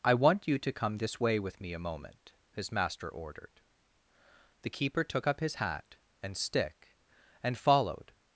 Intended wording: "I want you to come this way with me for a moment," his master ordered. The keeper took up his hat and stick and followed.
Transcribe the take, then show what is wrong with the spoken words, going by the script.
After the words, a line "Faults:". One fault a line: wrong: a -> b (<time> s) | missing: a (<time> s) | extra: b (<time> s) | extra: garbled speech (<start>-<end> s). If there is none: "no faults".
"I want you to come this way with me a moment," his master ordered. The keeper took up his hat and stick and followed.
Faults:
missing: for (1.7 s)